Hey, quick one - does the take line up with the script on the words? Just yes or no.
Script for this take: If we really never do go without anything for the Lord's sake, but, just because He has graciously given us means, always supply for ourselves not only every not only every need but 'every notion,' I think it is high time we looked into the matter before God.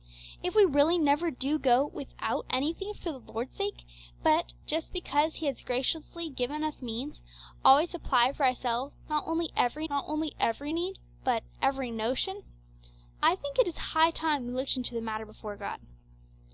yes